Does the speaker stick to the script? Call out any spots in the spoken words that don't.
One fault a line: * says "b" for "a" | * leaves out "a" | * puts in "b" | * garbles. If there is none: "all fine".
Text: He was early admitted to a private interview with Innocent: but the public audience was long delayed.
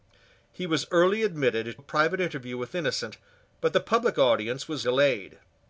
* leaves out "to"
* leaves out "long"